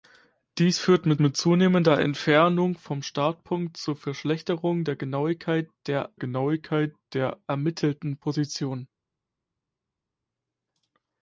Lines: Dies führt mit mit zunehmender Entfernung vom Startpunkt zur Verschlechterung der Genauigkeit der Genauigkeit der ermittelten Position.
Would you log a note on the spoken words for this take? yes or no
no